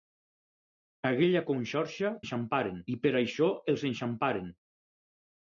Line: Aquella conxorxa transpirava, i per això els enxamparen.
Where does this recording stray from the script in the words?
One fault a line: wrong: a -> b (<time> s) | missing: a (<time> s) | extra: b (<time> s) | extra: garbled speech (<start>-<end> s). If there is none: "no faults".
wrong: transpirava -> enxamparen (2.2 s)